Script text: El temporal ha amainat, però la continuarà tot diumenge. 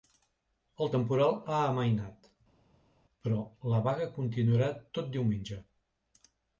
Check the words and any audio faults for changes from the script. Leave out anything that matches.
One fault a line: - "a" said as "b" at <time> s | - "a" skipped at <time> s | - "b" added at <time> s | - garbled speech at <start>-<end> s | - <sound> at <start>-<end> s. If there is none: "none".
- "vaga" added at 3.9 s